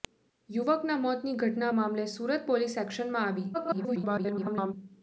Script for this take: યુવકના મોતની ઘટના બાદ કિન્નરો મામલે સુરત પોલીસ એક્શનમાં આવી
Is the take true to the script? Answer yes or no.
no